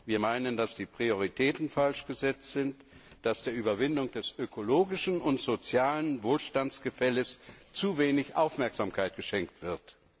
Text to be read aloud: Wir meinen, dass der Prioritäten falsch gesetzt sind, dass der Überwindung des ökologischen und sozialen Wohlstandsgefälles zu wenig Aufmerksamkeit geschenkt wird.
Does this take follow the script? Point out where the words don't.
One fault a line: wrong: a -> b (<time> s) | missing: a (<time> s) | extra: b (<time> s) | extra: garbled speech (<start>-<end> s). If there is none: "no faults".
wrong: der -> die (0.7 s)